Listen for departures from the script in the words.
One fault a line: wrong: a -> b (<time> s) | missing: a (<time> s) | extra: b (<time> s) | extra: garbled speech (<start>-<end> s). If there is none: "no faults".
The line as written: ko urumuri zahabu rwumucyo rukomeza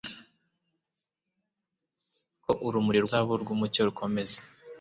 no faults